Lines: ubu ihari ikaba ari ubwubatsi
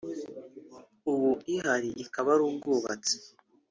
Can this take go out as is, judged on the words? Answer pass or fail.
pass